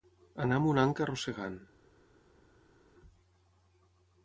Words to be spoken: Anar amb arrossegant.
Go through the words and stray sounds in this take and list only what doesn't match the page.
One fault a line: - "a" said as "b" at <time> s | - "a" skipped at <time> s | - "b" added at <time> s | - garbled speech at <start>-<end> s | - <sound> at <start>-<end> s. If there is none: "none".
- "una anca" added at 0.7 s